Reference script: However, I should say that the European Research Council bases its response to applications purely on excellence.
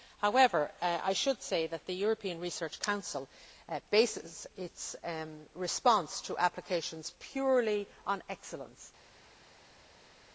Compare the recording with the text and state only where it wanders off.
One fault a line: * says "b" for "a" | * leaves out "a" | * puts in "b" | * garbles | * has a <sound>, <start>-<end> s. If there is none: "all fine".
all fine